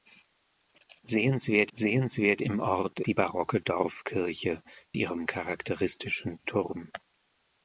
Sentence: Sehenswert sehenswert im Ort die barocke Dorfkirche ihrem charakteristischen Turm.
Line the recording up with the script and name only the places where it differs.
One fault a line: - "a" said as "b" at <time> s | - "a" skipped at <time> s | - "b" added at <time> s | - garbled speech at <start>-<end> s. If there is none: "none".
none